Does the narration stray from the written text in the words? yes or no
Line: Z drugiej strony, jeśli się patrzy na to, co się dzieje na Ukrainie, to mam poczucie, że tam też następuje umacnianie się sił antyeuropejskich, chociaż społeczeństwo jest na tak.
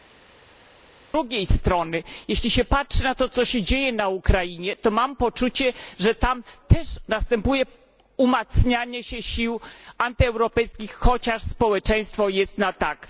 no